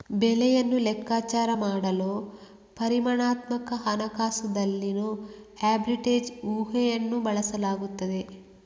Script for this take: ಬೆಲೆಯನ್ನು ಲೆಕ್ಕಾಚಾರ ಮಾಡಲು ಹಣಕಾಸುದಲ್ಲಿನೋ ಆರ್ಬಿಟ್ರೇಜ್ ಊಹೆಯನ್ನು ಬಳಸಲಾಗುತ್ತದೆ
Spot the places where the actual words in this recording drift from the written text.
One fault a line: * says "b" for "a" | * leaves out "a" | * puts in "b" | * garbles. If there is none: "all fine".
* puts in "ಪರಿಮಾಣಾತ್ಮಕ"